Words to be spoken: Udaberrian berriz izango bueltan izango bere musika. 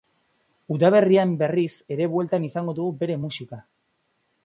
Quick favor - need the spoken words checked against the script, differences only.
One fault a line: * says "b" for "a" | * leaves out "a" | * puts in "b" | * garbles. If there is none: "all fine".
* says "ere" for "izango"
* puts in "dugu"